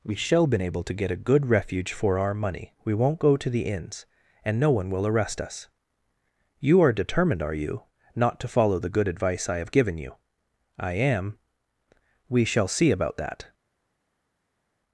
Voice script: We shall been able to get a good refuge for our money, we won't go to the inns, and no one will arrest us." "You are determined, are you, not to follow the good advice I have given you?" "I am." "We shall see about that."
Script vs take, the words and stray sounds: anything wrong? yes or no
no